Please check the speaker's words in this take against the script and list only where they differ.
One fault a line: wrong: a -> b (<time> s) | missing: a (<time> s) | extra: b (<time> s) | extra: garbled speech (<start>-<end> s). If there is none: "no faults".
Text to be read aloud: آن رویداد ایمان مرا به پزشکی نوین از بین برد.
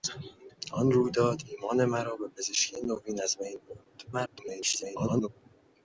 extra: garbled speech (4.1-5.3 s)